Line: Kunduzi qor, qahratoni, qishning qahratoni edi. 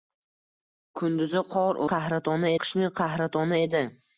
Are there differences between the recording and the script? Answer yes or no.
no